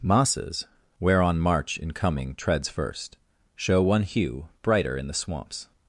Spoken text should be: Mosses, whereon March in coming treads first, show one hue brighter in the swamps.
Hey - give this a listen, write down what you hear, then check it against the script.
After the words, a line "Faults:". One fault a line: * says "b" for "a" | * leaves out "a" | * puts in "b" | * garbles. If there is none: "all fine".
Mosses, whereon March in coming treads first, show one hue brighter in the swamps.
Faults:
all fine